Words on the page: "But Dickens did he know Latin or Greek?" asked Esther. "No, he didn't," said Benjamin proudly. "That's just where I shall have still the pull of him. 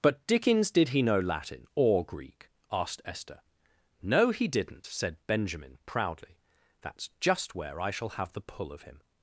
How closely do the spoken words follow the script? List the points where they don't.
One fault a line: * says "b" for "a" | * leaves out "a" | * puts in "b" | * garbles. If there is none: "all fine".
* leaves out "still"